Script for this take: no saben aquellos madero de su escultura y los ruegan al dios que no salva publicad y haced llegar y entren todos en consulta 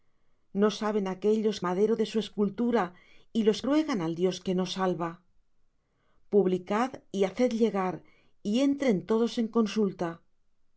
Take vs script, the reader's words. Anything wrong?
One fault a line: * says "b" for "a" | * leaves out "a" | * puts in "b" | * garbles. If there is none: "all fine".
all fine